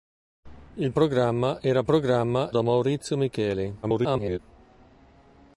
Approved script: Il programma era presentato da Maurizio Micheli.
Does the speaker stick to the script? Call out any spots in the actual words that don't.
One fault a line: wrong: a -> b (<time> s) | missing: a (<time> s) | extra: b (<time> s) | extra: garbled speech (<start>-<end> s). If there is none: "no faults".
wrong: presentato -> programma (1.9 s)
extra: garbled speech (3.8-4.4 s)